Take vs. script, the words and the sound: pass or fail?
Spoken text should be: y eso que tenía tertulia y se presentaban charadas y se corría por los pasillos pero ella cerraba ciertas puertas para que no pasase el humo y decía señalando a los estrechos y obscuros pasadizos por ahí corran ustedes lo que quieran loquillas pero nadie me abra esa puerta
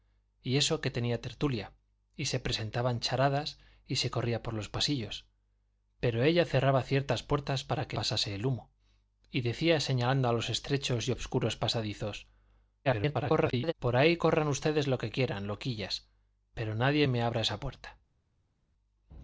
fail